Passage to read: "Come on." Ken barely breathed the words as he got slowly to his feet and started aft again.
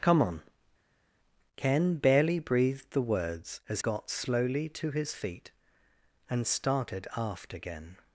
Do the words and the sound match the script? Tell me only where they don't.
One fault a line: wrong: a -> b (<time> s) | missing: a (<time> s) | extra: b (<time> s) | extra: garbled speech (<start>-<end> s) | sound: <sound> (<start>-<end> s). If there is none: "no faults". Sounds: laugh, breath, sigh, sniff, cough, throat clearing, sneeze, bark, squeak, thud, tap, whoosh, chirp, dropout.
missing: he (3.8 s)